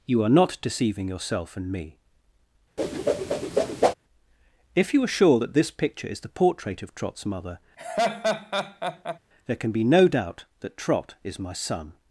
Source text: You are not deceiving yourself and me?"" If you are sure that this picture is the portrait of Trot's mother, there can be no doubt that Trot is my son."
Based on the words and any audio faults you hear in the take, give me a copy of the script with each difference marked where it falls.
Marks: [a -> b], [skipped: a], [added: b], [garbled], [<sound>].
You are not deceiving yourself and me?"" [whoosh] If you are sure that this picture is the portrait of Trot's mother, [laugh] there can be no doubt that Trot is my son."